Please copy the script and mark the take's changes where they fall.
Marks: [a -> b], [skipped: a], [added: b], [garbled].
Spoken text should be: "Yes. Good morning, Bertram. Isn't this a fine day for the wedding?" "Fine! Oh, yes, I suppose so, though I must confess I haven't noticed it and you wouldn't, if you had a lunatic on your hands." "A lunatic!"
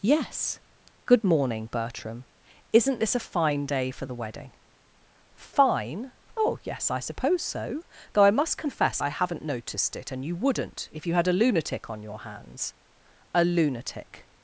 "Yes. Good morning, Bertram. Isn't this a fine day for the wedding?" "Fine! Oh, yes, I suppose so, though I must confess I haven't noticed it and you wouldn't, if you had a lunatic on your hands." "A lunatic!"